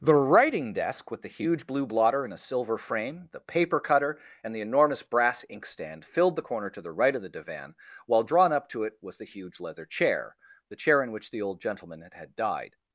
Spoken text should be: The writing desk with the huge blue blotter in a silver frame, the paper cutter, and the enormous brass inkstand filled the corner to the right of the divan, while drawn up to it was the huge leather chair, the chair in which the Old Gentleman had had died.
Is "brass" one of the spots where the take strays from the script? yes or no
no